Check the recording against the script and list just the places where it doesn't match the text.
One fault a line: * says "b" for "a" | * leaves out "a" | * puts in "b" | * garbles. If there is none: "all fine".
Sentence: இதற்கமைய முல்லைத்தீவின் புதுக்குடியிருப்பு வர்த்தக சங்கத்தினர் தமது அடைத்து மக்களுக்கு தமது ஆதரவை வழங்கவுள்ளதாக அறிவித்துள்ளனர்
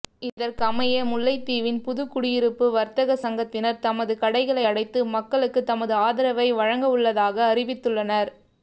* puts in "கடைகளை"